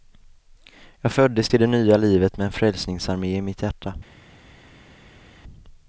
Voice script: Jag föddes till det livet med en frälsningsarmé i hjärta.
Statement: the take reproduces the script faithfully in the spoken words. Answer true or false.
false